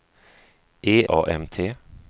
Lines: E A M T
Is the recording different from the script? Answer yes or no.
no